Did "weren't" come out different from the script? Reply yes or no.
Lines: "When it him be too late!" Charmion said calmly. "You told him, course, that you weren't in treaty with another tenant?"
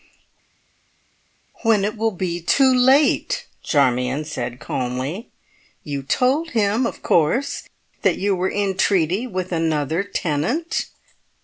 yes